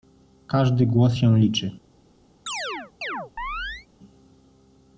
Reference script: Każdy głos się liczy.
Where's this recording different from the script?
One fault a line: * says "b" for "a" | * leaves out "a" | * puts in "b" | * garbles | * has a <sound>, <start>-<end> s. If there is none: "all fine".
* has a chirp, 2.5-3.9 s